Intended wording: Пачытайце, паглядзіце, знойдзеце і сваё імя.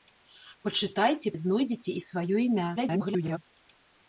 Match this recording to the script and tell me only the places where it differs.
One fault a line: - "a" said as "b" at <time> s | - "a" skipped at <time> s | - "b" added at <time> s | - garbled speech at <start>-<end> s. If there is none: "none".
- "паглядзіце" skipped at 1.3 s
- garbled speech at 2.8-3.4 s